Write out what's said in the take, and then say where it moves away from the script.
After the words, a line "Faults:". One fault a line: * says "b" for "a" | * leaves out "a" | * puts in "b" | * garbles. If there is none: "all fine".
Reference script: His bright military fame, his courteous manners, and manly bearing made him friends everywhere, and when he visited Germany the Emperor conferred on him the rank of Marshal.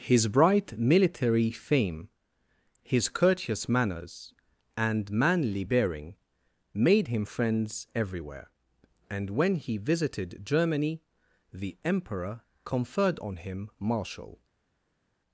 His bright military fame, his courteous manners, and manly bearing made him friends everywhere, and when he visited Germany the Emperor conferred on him Marshal.
Faults:
* leaves out "the rank of"